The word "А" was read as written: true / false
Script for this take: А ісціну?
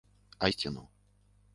true